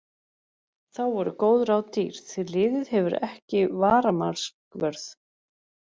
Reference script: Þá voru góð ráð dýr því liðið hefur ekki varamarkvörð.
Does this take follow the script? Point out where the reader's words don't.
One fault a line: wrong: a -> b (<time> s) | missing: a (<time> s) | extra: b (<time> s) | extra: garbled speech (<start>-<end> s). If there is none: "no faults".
no faults